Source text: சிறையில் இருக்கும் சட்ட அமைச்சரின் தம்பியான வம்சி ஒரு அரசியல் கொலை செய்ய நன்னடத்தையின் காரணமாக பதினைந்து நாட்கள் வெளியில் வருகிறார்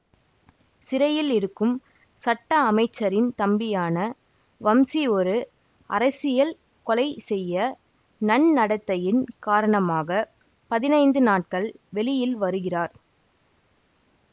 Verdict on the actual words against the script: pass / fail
pass